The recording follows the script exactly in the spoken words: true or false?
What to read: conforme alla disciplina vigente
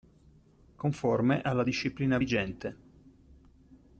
true